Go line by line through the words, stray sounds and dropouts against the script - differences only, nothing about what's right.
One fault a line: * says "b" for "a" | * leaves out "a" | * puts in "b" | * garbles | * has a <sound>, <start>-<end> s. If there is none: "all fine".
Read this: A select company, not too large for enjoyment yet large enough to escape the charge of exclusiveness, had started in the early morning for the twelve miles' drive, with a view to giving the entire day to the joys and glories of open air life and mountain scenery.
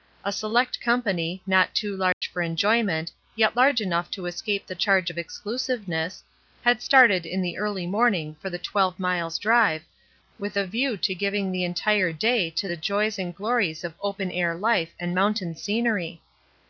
* has a dropout, 2.1-2.2 s